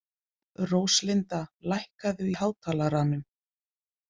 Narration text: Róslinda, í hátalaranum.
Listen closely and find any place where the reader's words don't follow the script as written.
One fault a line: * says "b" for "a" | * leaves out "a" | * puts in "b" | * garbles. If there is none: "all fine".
* puts in "lækkaðu"